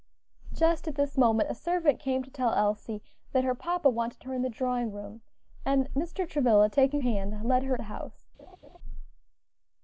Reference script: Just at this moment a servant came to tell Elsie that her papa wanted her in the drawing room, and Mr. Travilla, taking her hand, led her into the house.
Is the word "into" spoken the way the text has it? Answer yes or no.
no